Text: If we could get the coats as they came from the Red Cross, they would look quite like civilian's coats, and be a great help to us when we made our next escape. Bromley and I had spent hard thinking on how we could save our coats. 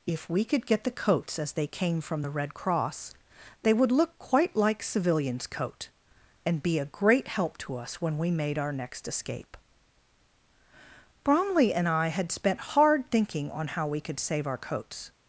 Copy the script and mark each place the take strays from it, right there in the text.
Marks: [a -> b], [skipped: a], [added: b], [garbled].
If we could get the coats as they came from the Red Cross, they would look quite like civilian's [coats, -> coat] and be a great help to us when we made our next escape. Bromley and I had spent hard thinking on how we could save our coats.